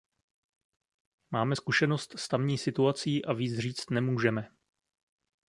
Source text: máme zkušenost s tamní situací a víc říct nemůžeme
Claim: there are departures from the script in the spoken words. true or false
false